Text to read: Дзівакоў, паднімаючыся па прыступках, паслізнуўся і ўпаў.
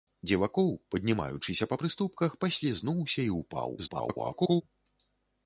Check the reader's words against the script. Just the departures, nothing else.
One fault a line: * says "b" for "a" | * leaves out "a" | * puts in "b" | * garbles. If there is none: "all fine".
* garbles